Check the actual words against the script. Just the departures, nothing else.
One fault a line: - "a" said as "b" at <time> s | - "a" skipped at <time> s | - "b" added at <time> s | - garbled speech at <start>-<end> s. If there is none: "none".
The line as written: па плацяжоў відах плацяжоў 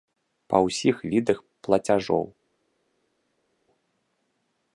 - "плацяжоў" said as "ўсіх" at 0.7 s